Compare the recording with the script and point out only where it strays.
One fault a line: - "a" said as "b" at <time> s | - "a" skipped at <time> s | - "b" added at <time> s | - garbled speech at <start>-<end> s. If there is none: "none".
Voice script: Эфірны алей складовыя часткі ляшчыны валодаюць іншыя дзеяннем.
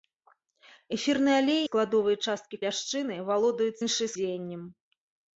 none